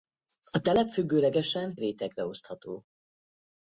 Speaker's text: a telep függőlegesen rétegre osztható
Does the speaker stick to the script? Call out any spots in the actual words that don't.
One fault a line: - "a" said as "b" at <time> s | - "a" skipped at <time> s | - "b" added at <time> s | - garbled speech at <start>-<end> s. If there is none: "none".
none